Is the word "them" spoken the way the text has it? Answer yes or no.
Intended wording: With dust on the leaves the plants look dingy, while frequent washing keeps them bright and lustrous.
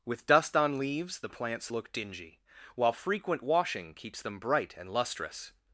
yes